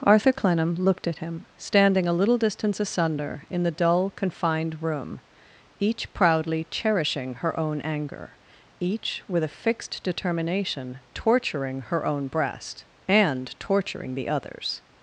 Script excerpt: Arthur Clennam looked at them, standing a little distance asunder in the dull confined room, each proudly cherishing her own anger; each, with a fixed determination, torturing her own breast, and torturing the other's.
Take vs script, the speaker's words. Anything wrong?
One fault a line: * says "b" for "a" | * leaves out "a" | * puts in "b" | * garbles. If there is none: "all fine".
* says "him" for "them"